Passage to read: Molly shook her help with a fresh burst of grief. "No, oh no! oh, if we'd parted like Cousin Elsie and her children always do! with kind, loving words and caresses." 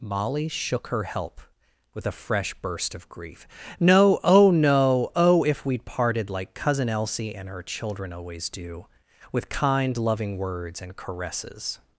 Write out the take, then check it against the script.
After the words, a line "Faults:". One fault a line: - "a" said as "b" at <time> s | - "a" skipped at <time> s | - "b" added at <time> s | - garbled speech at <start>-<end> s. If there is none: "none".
Molly shook her help with a fresh burst of grief. "No, oh no! oh, if we'd parted like Cousin Elsie and her children always do! with kind, loving words and caresses."
Faults:
none